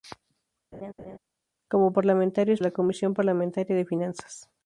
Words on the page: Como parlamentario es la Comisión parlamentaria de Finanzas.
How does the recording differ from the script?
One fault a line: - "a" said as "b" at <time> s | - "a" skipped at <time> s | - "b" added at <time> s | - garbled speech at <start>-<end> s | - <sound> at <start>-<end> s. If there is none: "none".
- laugh at 0.7-1.2 s